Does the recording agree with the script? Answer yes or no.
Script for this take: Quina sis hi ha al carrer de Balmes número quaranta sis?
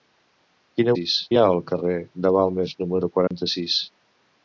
yes